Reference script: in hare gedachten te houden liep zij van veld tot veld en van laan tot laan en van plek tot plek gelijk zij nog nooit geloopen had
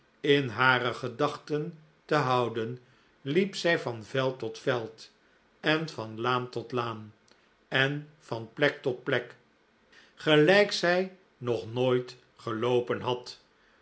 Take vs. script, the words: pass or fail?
pass